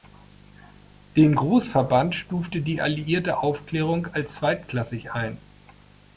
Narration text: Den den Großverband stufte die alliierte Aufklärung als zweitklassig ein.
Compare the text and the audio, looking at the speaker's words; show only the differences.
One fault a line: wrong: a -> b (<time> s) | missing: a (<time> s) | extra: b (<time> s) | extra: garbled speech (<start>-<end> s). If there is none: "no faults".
missing: den (1.4 s)